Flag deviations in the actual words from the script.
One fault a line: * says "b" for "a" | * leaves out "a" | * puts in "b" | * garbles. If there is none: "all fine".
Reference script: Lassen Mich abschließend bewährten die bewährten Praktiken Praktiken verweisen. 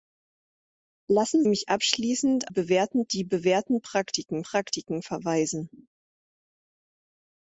all fine